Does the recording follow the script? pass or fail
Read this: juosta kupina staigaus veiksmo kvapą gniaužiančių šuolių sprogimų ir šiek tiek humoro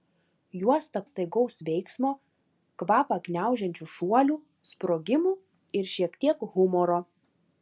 fail